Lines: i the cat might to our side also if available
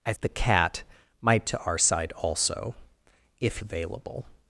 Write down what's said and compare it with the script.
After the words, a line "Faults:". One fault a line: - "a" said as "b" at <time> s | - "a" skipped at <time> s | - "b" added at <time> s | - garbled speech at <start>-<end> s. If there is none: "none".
i the cat might to our side also if available
Faults:
none